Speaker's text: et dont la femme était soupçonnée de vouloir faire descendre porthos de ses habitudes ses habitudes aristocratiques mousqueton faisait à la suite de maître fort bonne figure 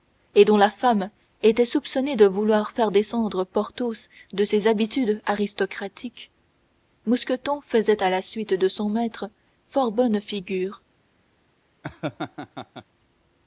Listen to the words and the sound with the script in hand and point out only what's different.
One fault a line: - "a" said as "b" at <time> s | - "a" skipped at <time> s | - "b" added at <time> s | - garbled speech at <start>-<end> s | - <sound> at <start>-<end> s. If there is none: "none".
- "ses habitudes" skipped at 5.2 s
- "son" added at 8.7 s
- laugh at 11.8-12.9 s